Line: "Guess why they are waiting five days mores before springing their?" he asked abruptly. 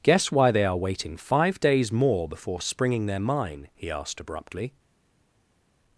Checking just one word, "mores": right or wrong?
wrong